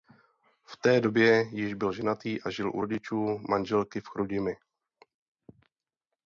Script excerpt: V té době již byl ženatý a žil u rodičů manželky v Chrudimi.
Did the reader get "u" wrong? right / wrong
right